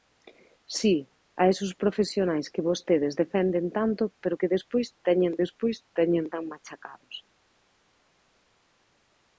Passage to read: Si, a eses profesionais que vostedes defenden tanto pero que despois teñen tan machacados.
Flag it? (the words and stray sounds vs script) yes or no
yes